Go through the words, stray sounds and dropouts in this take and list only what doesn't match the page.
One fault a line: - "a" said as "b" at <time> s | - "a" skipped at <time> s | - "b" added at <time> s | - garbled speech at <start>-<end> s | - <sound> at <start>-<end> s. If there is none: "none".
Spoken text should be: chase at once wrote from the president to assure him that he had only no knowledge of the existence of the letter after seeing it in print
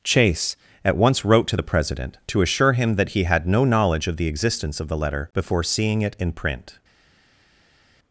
- "from" said as "to" at 1.5 s
- "only" skipped at 3.5 s
- "after" said as "before" at 5.3 s